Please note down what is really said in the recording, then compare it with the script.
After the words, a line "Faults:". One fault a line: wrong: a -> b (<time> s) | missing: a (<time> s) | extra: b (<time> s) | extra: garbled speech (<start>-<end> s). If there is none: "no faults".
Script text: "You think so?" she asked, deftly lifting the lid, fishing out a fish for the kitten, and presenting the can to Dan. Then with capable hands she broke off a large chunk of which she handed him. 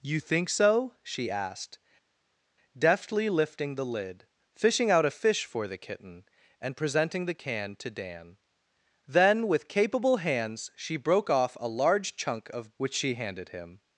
"You think so?" she asked, deftly lifting the lid, fishing out a fish for the kitten, and presenting the can to Dan. Then with capable hands she broke off a large chunk of which she handed him.
Faults:
no faults